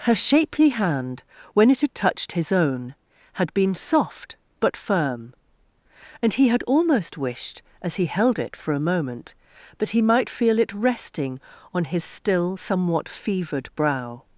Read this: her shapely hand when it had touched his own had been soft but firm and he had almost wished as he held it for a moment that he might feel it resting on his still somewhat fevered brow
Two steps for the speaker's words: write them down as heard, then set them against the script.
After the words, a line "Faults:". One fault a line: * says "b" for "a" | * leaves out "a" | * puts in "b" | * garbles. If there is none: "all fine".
her shapely hand when it had touched his own had been soft but firm and he had almost wished as he held it for a moment that he might feel it resting on his still somewhat fevered brow
Faults:
all fine